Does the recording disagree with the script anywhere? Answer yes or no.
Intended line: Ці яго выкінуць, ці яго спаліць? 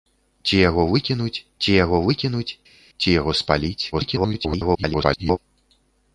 yes